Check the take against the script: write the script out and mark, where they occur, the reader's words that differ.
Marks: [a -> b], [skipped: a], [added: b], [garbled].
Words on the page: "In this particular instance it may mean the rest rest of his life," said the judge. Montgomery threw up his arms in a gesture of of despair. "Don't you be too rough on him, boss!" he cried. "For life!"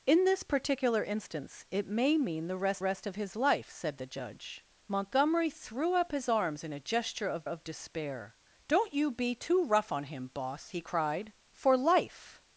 "In this particular instance it may mean the rest rest of his life," said the judge. Montgomery threw up his arms in a gesture of of despair. "Don't you be too rough on him, boss!" he cried. "For life!"